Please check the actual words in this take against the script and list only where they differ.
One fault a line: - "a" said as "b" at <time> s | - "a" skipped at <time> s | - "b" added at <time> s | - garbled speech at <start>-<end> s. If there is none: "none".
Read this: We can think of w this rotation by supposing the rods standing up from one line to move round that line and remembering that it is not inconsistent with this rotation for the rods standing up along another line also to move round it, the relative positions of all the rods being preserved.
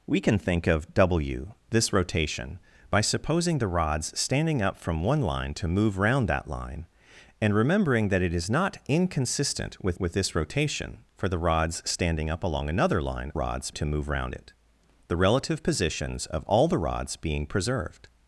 - "with" added at 10.0 s
- "also" said as "rods" at 13.3 s